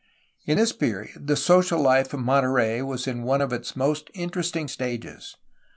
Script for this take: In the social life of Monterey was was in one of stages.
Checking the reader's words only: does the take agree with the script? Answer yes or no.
no